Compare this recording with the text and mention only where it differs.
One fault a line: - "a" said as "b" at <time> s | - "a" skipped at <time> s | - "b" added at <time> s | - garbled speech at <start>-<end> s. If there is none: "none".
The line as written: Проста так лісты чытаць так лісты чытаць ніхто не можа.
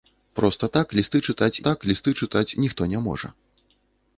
none